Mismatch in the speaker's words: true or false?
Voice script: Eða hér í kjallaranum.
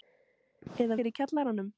false